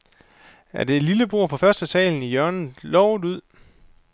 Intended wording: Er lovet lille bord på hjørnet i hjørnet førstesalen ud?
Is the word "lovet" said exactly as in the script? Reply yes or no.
no